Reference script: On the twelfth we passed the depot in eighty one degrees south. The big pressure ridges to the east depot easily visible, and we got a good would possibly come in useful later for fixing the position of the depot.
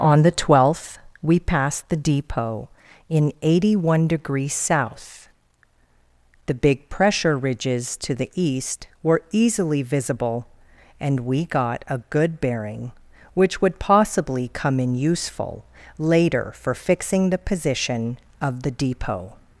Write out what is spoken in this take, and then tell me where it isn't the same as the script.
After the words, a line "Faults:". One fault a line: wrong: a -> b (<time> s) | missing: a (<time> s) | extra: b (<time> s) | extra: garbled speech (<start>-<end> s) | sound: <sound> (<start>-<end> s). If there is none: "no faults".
On the twelfth we passed the depot in eighty one degrees south. The big pressure ridges to the east were easily visible, and we got a good bearing, which would possibly come in useful later for fixing the position of the depot.
Faults:
wrong: depot -> were (9.0 s)
extra: bearing which (12.4 s)